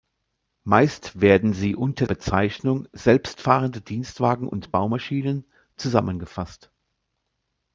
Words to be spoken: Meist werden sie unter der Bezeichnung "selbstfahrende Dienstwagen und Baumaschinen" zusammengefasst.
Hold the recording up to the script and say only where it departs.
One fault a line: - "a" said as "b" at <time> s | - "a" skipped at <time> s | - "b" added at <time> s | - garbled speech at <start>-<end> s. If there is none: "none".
- "der" skipped at 2.1 s